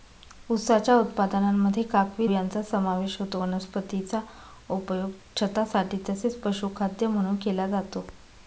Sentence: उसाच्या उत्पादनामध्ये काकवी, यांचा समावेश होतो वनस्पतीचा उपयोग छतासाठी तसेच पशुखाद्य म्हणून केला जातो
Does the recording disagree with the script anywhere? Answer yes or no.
no